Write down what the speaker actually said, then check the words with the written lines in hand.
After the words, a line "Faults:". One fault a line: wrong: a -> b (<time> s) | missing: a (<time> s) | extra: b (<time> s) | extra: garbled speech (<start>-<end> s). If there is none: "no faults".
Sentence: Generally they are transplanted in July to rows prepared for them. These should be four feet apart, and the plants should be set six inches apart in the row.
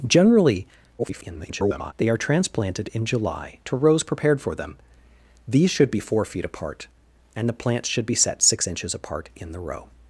Generally [garbled] they are transplanted in July to rows prepared for them. These should be four feet apart, and the plants should be set six inches apart in the row.
Faults:
extra: garbled speech (1.0-1.9 s)